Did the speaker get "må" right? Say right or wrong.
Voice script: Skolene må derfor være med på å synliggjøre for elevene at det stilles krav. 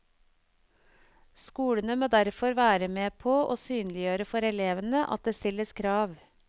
right